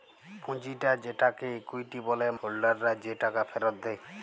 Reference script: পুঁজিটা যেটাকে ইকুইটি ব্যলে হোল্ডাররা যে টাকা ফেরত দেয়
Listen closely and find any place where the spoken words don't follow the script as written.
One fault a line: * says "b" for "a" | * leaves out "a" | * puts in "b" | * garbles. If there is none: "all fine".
all fine